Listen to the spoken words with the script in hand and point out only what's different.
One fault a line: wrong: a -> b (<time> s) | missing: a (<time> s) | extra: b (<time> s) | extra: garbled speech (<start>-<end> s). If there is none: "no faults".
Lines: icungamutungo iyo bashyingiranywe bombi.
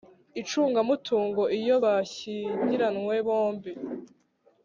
no faults